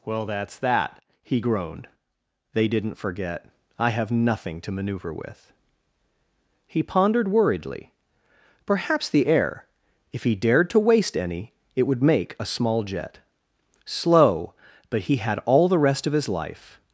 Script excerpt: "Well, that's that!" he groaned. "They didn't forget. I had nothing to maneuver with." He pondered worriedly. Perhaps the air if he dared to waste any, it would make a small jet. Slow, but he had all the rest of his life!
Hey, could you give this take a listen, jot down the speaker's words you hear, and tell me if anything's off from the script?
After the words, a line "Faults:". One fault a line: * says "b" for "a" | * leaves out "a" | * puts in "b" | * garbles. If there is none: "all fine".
"Well, that's that!" he groaned. "They didn't forget. I have nothing to maneuver with." He pondered worriedly. Perhaps the air if he dared to waste any, it would make a small jet. Slow, but he had all the rest of his life!
Faults:
* says "have" for "had"